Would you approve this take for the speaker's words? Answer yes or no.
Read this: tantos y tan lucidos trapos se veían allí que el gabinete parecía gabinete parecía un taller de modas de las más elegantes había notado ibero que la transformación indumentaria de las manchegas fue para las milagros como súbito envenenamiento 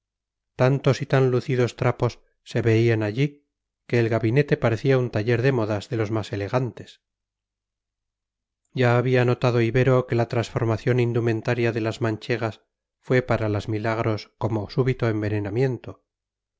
no